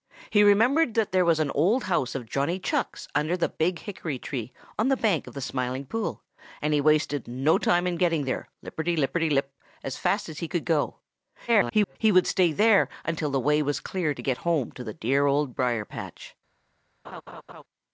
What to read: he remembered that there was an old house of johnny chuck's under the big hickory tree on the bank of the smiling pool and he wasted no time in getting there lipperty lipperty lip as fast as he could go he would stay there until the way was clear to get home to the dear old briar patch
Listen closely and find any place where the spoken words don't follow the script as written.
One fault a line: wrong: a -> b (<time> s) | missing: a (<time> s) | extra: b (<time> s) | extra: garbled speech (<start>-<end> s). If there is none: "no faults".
extra: garbled speech (11.5-12.0 s)